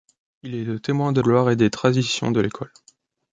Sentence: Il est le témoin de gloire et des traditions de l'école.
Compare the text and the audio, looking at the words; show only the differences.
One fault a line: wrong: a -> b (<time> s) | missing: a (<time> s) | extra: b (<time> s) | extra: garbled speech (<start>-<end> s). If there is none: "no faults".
no faults